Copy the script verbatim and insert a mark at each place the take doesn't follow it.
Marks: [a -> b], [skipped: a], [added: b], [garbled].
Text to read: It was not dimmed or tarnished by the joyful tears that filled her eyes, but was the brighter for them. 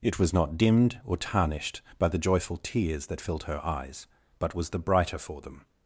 It was not dimmed or tarnished by the joyful tears that filled her eyes, but was the brighter for them.